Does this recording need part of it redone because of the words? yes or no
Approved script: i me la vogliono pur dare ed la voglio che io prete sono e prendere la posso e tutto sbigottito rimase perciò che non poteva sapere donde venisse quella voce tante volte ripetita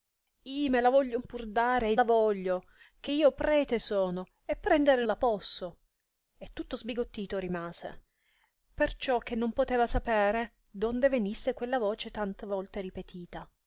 no